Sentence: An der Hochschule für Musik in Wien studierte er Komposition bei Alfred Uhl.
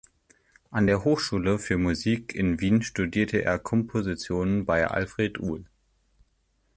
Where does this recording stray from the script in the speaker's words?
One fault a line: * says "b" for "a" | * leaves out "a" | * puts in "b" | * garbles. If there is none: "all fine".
all fine